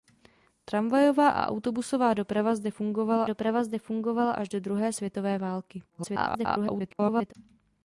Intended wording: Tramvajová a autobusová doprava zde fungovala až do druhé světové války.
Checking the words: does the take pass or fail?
fail